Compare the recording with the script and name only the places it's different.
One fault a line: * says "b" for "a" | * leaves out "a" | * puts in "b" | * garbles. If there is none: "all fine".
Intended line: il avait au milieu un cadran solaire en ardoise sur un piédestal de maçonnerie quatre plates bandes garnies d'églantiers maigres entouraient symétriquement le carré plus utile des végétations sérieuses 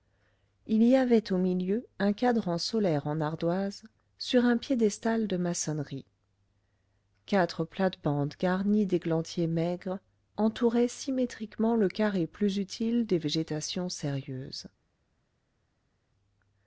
* puts in "y"